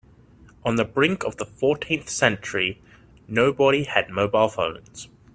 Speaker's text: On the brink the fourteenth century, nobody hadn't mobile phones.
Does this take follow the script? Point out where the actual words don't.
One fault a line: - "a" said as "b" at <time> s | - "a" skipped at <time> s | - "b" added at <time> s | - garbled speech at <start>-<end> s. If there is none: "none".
- "of" added at 1.2 s
- "hadn't" said as "had" at 3.8 s